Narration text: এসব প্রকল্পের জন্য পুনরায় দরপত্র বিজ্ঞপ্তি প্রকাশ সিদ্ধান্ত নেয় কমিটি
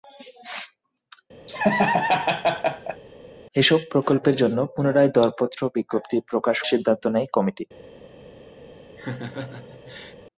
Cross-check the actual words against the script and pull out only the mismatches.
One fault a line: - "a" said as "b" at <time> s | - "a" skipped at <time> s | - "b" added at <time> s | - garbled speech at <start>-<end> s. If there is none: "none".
none